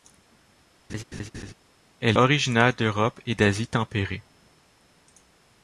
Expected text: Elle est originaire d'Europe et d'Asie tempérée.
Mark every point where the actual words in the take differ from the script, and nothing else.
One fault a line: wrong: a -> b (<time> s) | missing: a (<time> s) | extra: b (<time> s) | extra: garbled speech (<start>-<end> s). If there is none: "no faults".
missing: est (2.2 s)